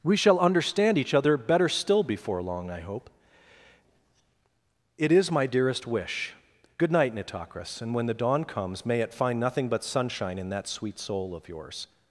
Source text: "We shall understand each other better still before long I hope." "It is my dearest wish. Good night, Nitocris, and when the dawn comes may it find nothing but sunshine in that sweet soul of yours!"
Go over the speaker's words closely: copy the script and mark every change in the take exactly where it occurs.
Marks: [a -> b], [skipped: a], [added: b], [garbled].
"We shall understand each other better still before long I hope." "It is my dearest wish. Good night, Nitocris, and when the dawn comes may it find nothing but sunshine in that sweet soul of yours!"